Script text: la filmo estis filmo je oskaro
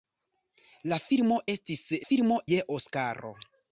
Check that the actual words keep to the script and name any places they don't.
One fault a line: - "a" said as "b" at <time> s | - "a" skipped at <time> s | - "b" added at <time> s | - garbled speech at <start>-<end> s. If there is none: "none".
none